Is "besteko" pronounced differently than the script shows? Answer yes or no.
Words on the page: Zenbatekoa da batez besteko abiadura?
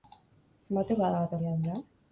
yes